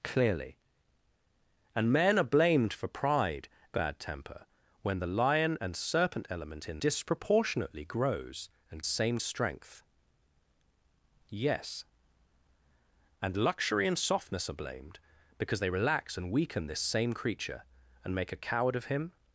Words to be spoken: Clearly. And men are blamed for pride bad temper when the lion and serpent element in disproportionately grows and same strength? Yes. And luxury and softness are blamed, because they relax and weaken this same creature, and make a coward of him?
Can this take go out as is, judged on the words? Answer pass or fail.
pass